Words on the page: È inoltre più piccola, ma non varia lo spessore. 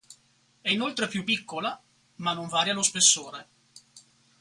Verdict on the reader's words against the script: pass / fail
pass